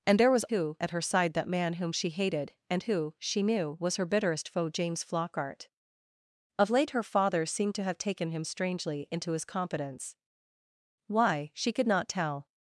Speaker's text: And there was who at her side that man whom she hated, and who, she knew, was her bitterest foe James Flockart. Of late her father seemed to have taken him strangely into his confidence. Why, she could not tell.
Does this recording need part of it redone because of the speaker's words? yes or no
no